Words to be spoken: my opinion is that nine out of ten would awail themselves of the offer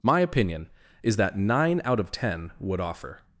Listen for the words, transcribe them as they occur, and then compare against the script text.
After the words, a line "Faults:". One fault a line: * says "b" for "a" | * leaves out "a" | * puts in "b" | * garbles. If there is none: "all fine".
my opinion is that nine out of ten would offer
Faults:
* leaves out "awail themselves of the"